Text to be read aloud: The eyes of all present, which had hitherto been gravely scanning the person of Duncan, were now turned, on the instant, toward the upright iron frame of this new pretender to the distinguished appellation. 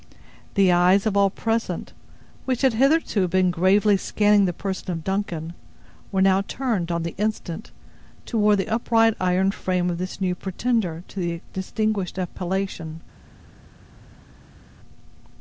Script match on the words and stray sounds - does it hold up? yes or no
yes